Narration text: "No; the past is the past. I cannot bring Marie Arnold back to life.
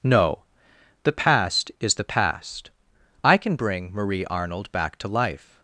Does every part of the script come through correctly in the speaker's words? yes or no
no